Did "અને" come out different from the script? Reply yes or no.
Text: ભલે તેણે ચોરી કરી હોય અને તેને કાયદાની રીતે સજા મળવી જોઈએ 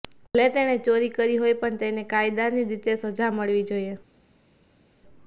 yes